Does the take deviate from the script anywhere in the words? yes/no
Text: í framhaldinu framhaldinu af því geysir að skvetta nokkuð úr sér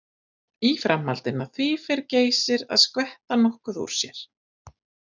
yes